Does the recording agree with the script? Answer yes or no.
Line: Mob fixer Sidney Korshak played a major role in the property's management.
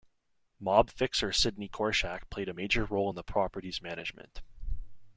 yes